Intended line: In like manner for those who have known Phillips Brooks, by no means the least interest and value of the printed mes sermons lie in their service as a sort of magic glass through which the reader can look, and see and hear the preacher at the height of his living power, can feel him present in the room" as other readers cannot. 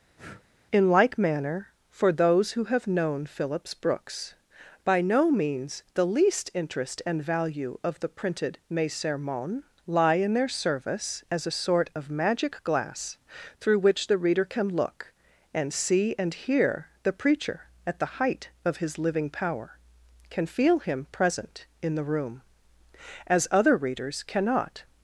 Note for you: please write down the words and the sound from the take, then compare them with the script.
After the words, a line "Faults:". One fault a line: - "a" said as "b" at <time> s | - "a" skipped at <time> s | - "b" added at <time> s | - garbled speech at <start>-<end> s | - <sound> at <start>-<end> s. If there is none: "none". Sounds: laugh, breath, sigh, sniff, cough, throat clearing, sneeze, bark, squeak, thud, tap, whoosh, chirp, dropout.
In like manner for those who have known Phillips Brooks, by no means the least interest and value of the printed mes sermons lie in their service as a sort of magic glass through which the reader can look, and see and hear the preacher at the height of his living power, can feel him present in the room" as other readers cannot.
Faults:
- breath at 0.2-0.4 s